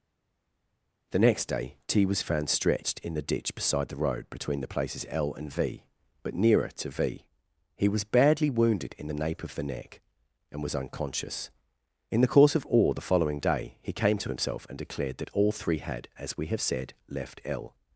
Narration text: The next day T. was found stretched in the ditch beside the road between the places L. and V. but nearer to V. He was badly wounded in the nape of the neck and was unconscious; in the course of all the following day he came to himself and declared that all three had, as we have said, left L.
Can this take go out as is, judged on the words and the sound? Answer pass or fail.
pass